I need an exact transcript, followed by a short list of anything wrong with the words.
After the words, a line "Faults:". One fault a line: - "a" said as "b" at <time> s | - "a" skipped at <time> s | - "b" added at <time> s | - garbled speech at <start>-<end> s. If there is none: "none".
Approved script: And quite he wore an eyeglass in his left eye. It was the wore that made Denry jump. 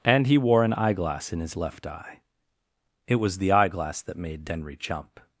And he wore an eyeglass in his left eye. It was the eyeglass that made Denry jump.
Faults:
- "quite" skipped at 0.3 s
- "wore" said as "eyeglass" at 3.5 s